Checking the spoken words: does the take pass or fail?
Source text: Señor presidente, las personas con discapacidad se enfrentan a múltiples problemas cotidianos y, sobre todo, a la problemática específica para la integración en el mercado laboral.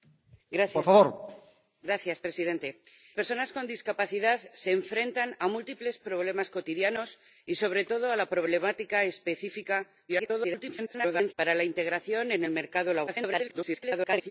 fail